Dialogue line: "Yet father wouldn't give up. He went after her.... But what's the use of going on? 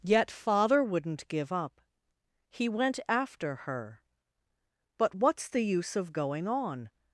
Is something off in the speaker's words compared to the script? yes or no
no